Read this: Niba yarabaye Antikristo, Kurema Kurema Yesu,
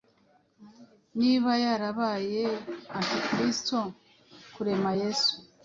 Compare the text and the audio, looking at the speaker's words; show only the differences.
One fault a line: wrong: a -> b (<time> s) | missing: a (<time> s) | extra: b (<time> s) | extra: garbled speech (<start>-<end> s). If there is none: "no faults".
missing: Kurema (4.9 s)